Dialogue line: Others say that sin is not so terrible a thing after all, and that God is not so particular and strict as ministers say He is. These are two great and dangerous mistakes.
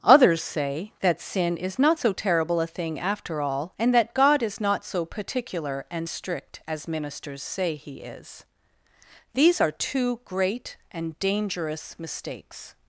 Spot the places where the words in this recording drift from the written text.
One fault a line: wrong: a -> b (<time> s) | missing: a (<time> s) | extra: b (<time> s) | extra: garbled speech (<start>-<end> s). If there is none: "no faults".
no faults